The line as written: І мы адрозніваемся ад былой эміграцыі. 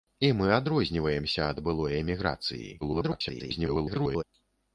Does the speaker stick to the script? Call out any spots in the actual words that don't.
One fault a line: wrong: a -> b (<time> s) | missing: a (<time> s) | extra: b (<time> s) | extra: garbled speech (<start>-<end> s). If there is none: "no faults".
extra: garbled speech (2.8-4.2 s)